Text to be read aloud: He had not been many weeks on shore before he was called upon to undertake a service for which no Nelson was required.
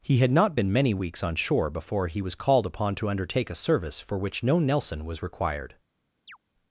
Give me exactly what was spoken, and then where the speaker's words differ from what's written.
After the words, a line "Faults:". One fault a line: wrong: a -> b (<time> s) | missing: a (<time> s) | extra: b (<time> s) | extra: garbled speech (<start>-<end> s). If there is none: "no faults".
He had not been many weeks on shore before he was called upon to undertake a service for which no Nelson was required.
Faults:
no faults